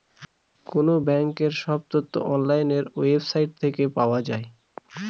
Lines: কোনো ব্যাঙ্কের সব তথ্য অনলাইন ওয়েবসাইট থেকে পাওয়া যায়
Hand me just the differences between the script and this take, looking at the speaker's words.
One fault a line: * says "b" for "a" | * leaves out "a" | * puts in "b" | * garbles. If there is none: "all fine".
all fine